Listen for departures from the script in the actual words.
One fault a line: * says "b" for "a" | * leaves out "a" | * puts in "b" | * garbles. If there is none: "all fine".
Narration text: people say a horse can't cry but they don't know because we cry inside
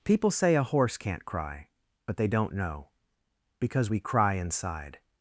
all fine